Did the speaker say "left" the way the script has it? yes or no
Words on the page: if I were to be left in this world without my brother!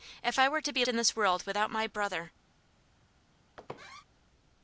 no